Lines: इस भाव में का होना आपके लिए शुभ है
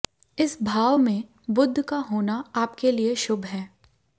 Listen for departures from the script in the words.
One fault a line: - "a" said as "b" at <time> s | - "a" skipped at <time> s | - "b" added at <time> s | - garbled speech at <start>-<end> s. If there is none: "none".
- "बुध" added at 1.5 s